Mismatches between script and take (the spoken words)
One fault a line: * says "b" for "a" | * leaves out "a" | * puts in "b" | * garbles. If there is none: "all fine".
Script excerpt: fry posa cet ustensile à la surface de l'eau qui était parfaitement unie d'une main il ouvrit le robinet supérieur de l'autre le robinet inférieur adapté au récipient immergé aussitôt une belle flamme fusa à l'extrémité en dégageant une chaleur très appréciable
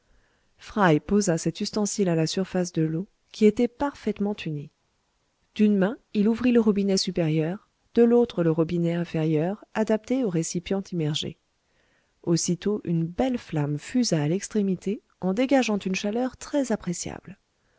all fine